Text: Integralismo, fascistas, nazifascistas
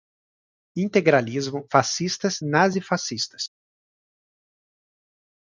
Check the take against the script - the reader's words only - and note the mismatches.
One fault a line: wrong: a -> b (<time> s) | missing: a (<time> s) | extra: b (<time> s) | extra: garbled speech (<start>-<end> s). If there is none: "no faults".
no faults